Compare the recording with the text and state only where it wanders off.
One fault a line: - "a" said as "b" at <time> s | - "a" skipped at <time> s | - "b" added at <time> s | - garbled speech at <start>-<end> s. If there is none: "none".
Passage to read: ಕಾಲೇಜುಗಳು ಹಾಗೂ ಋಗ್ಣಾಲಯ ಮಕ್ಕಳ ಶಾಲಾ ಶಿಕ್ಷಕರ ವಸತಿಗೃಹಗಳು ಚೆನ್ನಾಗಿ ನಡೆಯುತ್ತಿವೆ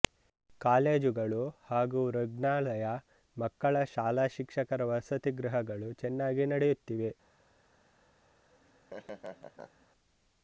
none